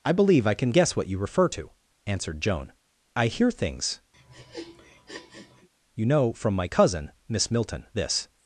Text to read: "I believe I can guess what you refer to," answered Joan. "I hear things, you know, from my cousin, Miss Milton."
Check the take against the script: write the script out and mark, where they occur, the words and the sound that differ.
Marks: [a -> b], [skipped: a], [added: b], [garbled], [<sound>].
"I believe I can guess what you refer to," answered Joan. "I hear things, [sniff] you know, from my cousin, Miss Milton." [added: This]